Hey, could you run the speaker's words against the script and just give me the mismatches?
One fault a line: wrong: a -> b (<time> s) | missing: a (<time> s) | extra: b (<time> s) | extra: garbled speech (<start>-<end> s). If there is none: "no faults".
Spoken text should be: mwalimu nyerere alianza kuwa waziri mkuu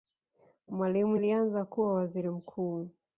missing: nyerere (1.2 s)